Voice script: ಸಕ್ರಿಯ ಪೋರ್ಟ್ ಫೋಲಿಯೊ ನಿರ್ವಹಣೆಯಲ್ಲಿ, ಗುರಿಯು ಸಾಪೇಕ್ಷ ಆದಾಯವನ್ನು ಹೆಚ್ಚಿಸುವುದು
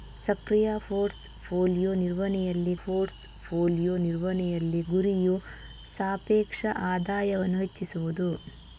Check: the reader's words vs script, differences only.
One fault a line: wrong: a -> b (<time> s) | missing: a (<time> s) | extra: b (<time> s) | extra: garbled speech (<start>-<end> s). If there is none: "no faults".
extra: ಪೋರ್ಟ್ ಫೋಲಿಯೊ ನಿರ್ವಹಣೆಯಲ್ಲಿ (2.8 s)